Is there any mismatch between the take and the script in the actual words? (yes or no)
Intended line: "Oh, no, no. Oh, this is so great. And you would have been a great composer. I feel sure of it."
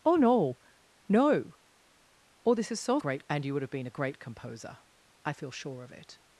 no